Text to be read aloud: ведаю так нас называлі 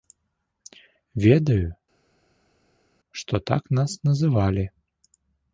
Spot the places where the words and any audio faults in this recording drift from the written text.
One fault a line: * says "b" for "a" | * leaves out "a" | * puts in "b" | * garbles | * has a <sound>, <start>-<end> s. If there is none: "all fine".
* puts in "што"